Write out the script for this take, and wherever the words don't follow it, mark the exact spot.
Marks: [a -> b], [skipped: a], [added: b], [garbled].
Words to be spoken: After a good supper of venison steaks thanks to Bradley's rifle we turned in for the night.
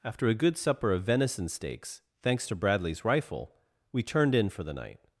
After a good supper of venison steaks thanks to Bradley's rifle we turned in for the night.